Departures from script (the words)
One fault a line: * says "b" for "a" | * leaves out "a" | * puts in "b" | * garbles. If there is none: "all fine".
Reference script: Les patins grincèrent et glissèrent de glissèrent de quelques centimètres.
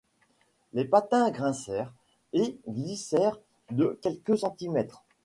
* leaves out "glissèrent de"